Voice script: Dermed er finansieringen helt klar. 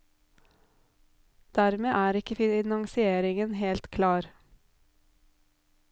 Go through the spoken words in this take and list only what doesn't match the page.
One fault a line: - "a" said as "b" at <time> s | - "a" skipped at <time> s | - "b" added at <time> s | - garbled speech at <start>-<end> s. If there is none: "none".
- "ikke" added at 2.2 s